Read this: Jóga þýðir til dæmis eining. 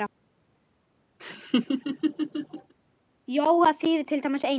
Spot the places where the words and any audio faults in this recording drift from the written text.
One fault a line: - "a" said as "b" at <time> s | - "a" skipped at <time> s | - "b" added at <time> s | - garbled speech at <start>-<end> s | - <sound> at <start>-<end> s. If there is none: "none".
- laugh at 1.2-2.7 s